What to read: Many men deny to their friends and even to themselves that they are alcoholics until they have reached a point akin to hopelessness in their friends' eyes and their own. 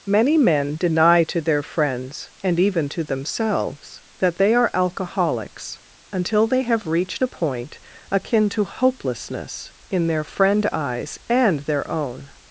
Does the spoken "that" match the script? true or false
true